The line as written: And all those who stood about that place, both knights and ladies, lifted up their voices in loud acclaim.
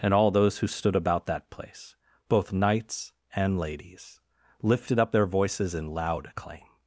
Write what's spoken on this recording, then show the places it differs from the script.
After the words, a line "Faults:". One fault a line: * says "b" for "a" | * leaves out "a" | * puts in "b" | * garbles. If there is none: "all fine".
And all those who stood about that place, both knights and ladies, lifted up their voices in loud acclaim.
Faults:
all fine